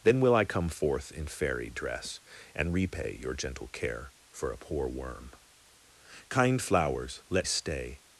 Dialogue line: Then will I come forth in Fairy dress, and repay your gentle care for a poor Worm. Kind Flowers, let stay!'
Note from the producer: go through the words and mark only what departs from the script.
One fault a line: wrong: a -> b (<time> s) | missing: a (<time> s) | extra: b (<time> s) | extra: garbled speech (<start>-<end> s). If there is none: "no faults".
no faults